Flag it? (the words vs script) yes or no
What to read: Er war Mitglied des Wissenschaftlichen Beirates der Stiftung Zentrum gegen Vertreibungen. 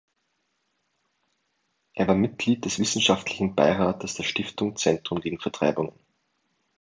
no